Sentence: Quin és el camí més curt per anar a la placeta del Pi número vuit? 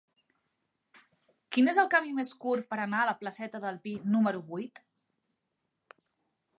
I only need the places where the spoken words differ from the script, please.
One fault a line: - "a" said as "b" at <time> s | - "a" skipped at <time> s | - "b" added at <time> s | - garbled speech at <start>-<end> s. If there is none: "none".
none